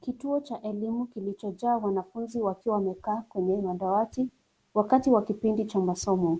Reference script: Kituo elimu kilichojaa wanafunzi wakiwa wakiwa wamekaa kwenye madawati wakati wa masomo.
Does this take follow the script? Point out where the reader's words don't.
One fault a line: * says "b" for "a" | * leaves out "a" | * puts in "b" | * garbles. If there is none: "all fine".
* puts in "cha"
* leaves out "wakiwa"
* puts in "kipindi cha"